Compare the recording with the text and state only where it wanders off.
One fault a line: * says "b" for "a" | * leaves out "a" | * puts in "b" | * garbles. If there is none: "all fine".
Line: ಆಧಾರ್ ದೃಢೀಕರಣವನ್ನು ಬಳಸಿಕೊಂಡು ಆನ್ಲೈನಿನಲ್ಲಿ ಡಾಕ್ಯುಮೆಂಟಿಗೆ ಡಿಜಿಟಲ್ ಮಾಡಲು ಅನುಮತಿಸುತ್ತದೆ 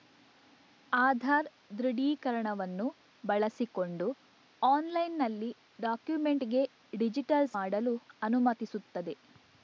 all fine